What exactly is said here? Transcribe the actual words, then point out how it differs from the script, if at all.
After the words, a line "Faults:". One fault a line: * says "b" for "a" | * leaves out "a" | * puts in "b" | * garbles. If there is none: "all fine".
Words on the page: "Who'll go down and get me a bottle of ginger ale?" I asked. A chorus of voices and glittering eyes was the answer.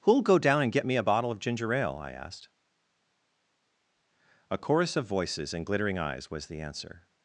"Who'll go down and get me a bottle of ginger ale?" I asked. A chorus of voices and glittering eyes was the answer.
Faults:
all fine